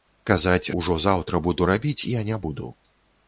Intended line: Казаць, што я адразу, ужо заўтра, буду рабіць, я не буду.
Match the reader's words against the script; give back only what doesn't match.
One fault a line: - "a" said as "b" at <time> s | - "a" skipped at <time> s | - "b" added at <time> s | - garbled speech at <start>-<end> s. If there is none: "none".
- "што я адразу" skipped at 0.7 s